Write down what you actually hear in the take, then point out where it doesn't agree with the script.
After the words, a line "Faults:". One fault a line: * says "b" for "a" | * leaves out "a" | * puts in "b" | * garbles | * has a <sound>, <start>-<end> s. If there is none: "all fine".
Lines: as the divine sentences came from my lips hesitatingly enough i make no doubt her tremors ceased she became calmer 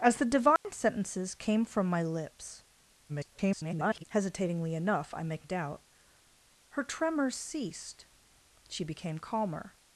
as the divine sentences came from my lips [garbled] hesitatingly enough i make doubt her tremors ceased she became calmer
Faults:
* has a dropout, 0.6-0.6 s
* garbles
* leaves out "no"